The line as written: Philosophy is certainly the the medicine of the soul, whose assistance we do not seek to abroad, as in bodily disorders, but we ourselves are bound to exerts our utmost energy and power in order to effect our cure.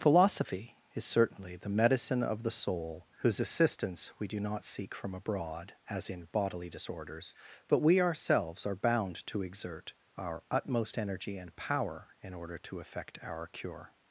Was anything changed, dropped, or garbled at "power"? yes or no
no